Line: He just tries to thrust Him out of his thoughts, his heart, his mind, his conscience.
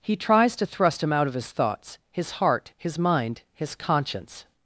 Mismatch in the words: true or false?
true